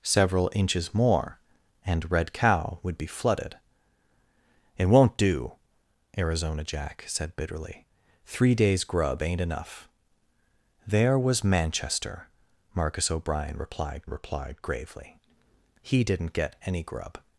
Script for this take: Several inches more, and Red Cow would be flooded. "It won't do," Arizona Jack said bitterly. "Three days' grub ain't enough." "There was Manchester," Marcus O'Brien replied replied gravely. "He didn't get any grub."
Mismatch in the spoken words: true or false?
false